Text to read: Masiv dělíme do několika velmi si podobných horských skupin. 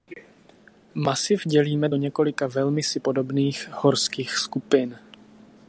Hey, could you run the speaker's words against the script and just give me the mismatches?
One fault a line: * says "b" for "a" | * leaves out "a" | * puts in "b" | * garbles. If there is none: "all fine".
all fine